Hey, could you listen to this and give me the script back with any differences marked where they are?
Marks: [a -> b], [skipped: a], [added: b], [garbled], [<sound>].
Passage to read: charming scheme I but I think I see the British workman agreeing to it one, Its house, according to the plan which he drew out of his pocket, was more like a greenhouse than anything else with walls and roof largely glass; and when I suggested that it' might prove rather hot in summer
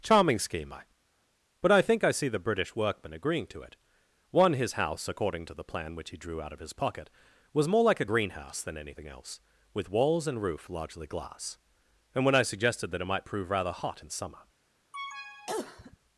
charming scheme I but I think I see the British workman agreeing to it one, [Its -> His] house, according to the plan which he drew out of his pocket, was more like a greenhouse than anything else with walls and roof largely glass; and when I suggested that it' might prove rather hot in summer [cough]